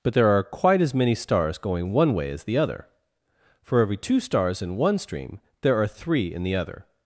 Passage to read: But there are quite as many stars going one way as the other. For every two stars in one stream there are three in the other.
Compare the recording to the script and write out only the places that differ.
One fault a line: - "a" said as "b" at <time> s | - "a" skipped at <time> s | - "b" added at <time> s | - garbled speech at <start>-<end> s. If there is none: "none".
none